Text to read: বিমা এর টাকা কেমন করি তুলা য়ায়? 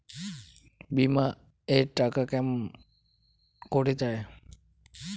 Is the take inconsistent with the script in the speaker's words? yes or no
yes